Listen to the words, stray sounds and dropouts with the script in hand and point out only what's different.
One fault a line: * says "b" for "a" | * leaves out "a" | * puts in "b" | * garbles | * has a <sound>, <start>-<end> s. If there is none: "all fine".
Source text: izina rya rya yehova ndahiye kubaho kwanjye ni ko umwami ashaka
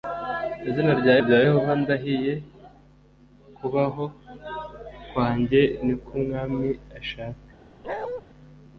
* has a bark, 7.8-8.2 s